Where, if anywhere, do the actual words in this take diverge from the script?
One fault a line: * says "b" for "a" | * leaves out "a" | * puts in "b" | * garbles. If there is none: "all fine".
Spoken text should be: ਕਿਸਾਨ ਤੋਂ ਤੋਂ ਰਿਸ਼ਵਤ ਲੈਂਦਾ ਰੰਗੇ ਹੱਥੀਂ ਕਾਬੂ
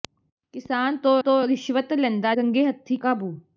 all fine